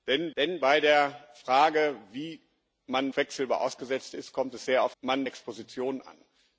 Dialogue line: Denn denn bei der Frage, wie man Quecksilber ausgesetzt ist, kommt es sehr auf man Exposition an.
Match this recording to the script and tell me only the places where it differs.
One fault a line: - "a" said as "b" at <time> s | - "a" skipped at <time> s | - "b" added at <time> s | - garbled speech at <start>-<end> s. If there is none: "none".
none